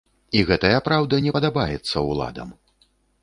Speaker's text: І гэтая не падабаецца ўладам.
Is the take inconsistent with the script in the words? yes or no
yes